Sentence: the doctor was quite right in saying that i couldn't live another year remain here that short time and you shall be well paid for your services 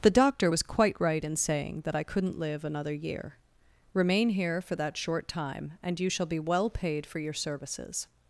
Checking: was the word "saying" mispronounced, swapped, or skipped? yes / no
no